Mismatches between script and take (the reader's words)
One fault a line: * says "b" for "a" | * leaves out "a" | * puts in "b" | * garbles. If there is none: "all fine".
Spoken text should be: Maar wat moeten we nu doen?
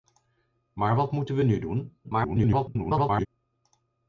* garbles